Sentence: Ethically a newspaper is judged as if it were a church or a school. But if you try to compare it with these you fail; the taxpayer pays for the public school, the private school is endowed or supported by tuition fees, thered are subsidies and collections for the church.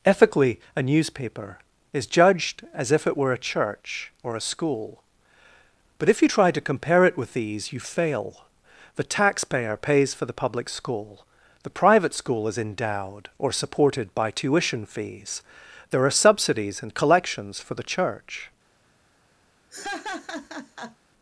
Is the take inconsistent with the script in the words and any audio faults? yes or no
yes